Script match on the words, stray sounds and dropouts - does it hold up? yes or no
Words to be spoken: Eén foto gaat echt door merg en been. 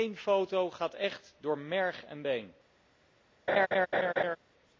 no